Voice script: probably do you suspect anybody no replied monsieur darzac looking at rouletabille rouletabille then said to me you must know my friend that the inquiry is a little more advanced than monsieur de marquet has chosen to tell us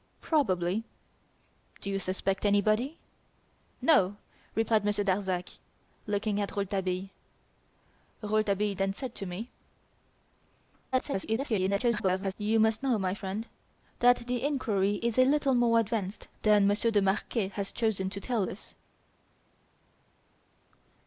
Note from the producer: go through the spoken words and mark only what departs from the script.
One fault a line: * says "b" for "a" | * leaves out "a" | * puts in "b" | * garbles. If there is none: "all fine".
* garbles